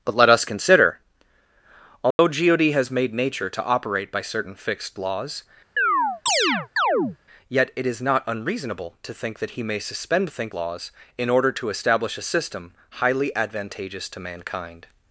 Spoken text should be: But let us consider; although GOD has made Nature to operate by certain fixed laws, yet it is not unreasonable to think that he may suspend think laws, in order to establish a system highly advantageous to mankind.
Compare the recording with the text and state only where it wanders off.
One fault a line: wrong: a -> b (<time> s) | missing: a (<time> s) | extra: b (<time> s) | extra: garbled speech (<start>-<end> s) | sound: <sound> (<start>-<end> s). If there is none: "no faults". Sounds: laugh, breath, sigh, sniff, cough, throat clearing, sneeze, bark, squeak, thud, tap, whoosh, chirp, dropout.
sound: dropout (2.1-2.2 s)
sound: chirp (5.8-7.2 s)